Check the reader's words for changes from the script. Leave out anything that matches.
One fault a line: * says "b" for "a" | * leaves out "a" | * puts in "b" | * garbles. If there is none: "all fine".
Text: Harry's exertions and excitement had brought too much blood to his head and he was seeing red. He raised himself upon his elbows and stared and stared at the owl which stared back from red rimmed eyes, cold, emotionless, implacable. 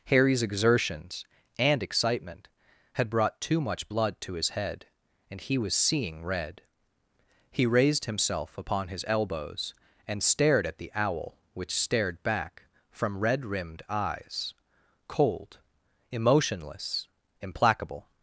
* leaves out "and stared"